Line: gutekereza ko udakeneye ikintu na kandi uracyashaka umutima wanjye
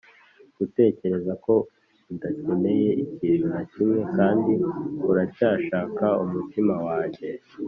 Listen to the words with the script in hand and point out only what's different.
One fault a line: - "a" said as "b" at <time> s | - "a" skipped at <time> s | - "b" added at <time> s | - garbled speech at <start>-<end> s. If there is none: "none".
- "kimwe" added at 3.7 s